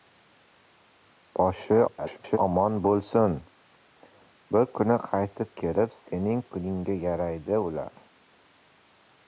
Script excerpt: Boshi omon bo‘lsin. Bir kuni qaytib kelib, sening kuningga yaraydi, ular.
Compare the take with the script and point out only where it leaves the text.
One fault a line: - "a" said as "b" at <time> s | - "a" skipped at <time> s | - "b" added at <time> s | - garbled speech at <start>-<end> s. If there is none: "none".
- garbled speech at 1.9-2.4 s